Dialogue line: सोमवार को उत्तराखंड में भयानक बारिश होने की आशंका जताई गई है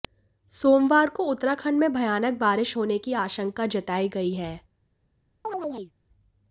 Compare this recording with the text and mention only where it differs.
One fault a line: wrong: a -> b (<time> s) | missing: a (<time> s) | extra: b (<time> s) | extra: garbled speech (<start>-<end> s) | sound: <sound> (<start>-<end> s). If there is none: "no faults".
sound: chirp (5.4-5.9 s)